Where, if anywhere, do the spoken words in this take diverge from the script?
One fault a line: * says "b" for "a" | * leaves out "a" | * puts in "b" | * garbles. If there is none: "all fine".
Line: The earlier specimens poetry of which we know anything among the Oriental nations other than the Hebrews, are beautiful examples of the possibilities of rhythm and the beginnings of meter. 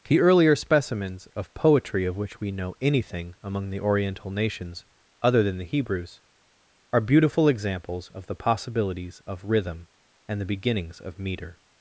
* puts in "of"